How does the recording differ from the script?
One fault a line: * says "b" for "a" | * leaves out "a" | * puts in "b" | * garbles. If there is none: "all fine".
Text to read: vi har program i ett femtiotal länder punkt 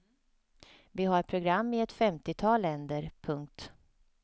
all fine